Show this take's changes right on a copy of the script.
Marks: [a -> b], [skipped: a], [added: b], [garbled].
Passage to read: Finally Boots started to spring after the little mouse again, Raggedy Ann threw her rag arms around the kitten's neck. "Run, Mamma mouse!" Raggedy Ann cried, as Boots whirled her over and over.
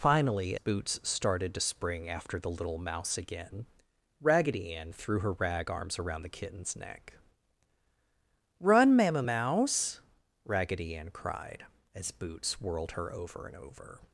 Finally Boots started to spring after the little mouse again, Raggedy Ann threw her rag arms around the kitten's neck. "Run, Mamma mouse!" Raggedy Ann cried, as Boots whirled her over and over.